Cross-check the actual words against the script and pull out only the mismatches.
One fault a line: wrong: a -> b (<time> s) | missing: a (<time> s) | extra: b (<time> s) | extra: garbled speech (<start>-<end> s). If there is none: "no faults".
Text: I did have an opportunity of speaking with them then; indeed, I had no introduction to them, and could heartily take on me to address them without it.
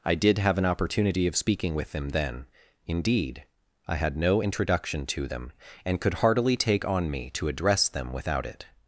no faults